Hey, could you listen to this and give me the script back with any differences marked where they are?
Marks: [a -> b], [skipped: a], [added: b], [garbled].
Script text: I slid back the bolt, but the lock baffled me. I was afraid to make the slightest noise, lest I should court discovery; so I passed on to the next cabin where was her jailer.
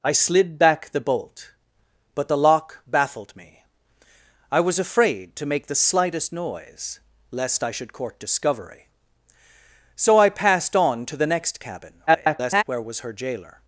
I slid back the bolt, but the lock baffled me. I was afraid to make the slightest noise, lest I should court discovery; so I passed on to the next cabin [garbled] where was her jailer.